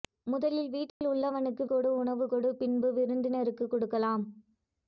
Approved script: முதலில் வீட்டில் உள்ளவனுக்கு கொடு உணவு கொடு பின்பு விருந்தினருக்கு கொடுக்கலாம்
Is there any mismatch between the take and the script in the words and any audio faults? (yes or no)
yes